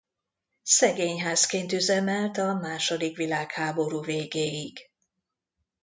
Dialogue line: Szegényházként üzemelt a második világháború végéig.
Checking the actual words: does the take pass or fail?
pass